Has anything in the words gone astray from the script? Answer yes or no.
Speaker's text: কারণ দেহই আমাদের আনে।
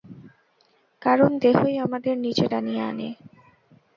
yes